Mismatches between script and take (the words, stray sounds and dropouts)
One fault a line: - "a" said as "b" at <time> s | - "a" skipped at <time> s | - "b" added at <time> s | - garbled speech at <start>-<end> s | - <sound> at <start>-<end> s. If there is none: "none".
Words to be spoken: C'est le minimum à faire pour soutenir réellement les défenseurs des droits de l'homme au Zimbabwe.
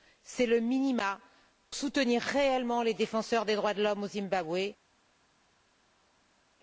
- "à faire pour" skipped at 1.2 s